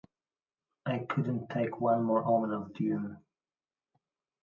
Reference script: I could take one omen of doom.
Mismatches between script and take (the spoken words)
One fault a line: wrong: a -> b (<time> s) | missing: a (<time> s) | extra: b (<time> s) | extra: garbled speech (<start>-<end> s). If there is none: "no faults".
wrong: could -> couldn't (1.1 s)
extra: more (2.0 s)